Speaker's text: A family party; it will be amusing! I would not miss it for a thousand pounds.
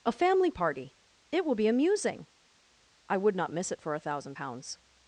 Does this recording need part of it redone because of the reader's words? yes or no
no